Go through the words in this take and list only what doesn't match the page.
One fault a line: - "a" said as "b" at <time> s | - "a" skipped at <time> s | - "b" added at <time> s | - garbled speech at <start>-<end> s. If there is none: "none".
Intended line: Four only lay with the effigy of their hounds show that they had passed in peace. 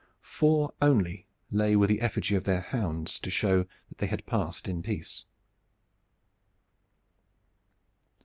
- "to" added at 3.2 s